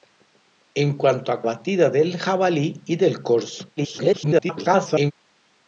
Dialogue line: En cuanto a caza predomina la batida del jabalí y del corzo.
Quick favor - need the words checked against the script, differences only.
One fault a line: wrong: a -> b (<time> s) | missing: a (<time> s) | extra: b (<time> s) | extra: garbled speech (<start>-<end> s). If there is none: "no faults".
missing: caza predomina la (1.4 s)
extra: garbled speech (3.8-5.1 s)